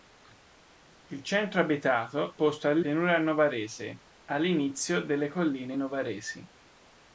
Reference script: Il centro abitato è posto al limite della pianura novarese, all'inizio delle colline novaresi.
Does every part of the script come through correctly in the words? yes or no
no